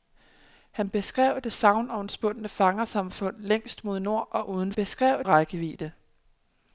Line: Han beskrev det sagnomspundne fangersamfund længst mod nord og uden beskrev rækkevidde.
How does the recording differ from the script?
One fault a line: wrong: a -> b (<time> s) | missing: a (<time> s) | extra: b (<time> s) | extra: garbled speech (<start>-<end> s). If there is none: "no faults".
no faults